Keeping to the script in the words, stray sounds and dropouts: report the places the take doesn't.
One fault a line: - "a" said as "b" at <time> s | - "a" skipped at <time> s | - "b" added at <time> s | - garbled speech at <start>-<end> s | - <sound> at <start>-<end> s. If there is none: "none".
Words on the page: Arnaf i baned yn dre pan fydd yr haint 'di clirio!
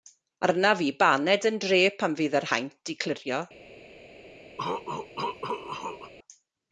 - cough at 4.6-6.1 s